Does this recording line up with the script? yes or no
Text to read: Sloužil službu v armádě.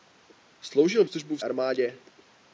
yes